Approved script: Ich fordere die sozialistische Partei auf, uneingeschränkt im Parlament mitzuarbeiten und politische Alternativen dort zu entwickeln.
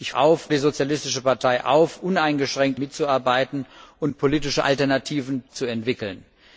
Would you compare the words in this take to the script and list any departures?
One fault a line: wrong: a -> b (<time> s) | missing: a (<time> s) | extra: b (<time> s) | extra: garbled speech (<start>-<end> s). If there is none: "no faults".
wrong: fordere -> auf (0.1 s)
missing: im Parlament (2.8 s)
missing: dort (5.4 s)